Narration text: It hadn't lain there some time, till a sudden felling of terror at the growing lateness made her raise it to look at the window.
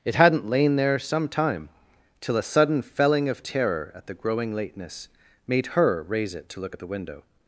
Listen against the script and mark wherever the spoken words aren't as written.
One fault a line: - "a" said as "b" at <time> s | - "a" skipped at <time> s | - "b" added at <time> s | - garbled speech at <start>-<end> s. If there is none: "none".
none